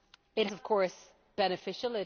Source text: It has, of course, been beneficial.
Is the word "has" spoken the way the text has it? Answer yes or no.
no